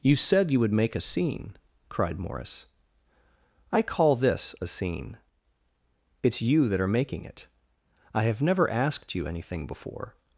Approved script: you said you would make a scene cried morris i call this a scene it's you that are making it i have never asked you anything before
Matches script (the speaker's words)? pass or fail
pass